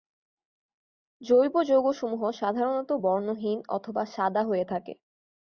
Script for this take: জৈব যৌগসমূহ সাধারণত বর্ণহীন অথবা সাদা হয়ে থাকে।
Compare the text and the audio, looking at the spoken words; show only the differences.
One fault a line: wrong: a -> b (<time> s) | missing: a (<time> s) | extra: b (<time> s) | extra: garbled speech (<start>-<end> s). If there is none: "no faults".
no faults